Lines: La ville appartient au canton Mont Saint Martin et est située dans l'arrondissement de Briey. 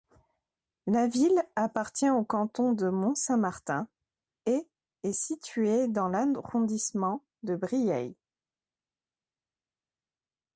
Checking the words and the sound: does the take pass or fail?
fail